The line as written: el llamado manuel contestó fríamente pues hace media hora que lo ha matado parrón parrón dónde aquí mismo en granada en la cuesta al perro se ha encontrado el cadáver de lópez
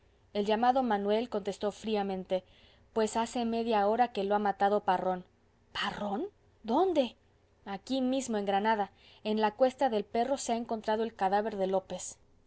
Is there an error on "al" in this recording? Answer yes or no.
yes